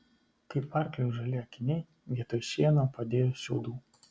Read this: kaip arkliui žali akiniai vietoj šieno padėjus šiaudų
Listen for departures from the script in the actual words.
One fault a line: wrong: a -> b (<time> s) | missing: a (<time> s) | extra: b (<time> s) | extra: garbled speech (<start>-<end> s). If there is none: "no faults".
no faults